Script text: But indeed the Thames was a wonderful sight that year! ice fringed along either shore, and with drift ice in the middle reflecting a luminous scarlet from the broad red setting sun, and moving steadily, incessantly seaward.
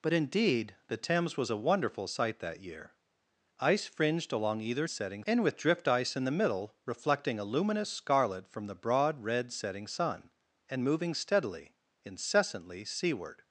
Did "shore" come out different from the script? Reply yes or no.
yes